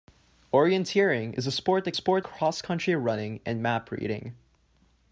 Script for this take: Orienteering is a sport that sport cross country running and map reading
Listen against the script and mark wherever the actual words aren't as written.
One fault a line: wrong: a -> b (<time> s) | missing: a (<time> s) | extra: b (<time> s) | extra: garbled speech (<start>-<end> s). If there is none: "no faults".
no faults